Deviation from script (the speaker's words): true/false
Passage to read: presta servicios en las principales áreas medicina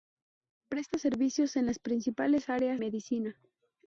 false